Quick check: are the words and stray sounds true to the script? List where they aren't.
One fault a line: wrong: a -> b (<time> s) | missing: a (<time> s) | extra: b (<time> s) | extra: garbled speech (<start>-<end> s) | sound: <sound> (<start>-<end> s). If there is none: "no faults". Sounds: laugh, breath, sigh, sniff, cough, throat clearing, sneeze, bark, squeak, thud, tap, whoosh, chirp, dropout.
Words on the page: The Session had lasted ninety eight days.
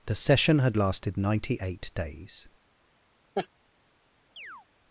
sound: laugh (3.3-3.5 s)
sound: chirp (4.4-4.7 s)